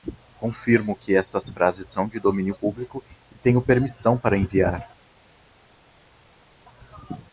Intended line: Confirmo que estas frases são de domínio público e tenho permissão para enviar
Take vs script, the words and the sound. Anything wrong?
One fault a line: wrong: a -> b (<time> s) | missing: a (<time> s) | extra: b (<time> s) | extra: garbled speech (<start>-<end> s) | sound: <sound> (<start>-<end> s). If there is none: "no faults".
no faults